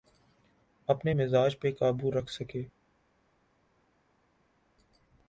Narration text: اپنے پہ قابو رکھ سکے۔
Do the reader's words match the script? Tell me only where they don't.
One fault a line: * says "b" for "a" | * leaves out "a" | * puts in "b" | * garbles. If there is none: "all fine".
* puts in "مزاج"